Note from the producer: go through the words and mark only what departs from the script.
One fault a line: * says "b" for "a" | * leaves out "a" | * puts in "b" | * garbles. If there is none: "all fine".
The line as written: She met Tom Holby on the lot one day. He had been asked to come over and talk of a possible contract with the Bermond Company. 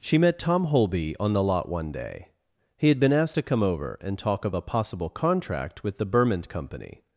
all fine